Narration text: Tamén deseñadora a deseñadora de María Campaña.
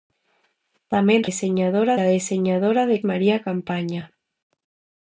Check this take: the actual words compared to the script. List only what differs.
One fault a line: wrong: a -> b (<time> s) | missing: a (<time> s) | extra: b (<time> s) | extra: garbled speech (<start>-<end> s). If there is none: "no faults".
no faults